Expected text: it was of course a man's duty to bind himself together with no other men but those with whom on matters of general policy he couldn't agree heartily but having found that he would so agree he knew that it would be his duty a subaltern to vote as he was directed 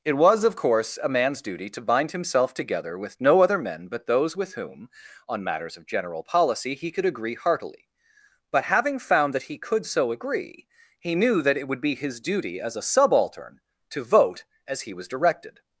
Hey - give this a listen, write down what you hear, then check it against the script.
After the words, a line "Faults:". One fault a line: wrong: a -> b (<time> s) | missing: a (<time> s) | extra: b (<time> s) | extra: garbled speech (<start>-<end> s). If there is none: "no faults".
it was of course a man's duty to bind himself together with no other men but those with whom on matters of general policy he could agree heartily but having found that he could so agree he knew that it would be his duty as a subaltern to vote as he was directed
Faults:
wrong: couldn't -> could (6.9 s)
wrong: would -> could (9.6 s)
extra: as (12.6 s)